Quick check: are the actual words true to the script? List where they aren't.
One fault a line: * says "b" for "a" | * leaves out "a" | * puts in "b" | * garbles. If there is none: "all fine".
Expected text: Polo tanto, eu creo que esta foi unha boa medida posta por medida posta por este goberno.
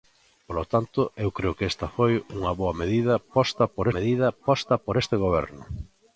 all fine